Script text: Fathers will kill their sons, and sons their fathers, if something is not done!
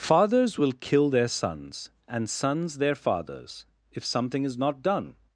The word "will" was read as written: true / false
true